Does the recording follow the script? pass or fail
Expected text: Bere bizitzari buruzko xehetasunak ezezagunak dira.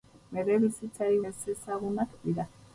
fail